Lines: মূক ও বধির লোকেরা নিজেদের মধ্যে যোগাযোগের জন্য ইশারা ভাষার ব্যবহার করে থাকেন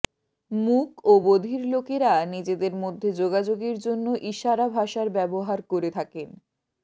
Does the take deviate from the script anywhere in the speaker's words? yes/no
no